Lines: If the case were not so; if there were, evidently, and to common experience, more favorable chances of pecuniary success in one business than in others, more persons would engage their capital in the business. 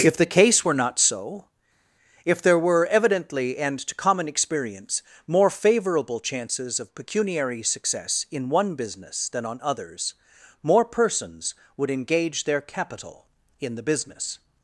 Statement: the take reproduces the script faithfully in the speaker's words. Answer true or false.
false